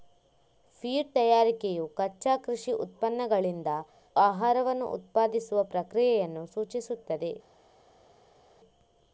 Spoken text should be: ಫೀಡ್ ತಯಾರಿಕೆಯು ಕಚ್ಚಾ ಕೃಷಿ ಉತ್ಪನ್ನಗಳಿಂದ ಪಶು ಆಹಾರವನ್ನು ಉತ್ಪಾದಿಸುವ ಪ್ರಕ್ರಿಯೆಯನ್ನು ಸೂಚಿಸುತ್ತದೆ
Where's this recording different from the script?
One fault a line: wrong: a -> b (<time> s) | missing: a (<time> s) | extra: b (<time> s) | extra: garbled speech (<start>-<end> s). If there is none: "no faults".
missing: ಪಶು (3.7 s)